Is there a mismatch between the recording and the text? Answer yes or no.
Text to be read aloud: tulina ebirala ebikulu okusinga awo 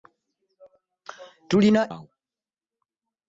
yes